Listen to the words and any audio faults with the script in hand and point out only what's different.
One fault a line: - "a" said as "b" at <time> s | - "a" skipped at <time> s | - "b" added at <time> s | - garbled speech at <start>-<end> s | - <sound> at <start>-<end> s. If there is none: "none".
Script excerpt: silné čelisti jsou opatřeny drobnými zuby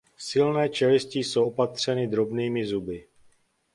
none